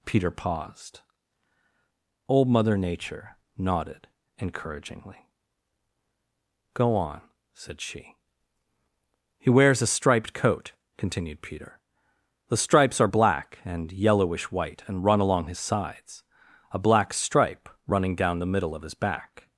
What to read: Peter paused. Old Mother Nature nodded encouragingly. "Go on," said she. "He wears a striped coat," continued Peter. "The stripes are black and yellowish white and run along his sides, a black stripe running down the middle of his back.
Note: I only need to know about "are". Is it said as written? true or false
true